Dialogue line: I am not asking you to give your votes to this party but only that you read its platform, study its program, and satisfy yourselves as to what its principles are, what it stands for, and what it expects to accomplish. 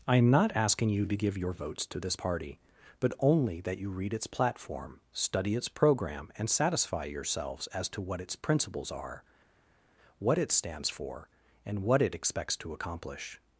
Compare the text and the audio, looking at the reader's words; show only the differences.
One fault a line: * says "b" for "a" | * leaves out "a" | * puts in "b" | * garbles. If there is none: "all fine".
all fine